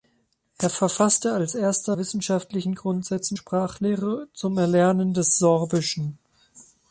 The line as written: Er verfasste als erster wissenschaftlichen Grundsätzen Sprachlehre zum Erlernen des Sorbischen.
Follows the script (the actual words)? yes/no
yes